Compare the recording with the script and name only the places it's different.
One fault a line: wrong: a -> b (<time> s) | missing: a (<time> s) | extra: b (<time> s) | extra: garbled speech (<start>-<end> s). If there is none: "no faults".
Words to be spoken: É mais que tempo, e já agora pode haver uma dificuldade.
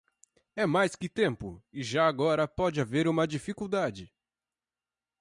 no faults